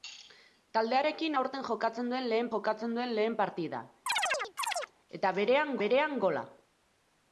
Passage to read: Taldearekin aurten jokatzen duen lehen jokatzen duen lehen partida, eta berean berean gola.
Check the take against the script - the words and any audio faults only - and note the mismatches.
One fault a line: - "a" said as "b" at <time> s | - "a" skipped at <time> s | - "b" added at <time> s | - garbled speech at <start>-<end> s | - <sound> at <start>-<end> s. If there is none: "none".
- chirp at 4.1-4.9 s